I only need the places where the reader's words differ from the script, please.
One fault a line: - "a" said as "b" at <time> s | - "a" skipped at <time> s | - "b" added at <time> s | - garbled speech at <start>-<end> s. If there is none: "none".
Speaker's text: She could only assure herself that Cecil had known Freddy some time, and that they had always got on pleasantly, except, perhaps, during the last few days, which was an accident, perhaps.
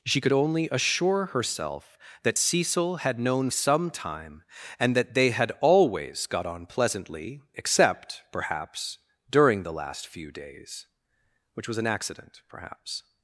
- "Freddy" skipped at 3.5 s